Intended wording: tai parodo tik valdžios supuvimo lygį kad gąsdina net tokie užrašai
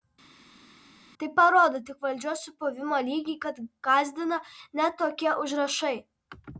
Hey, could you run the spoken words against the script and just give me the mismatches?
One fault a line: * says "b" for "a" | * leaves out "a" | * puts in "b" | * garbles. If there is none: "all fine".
all fine